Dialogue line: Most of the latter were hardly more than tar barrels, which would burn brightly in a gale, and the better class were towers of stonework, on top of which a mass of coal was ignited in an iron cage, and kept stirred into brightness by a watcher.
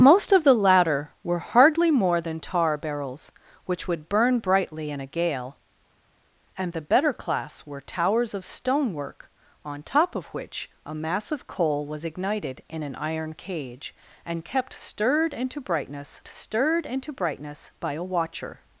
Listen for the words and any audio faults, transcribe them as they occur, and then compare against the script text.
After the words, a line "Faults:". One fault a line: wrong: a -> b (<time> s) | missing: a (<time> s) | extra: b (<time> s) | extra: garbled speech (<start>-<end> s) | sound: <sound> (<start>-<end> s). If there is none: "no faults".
Most of the latter were hardly more than tar barrels, which would burn brightly in a gale, and the better class were towers of stonework, on top of which a mass of coal was ignited in an iron cage, and kept stirred into brightness stirred into brightness by a watcher.
Faults:
extra: stirred into brightness (16.3 s)